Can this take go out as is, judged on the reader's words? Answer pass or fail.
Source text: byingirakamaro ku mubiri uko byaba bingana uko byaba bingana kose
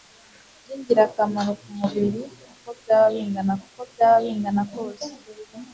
pass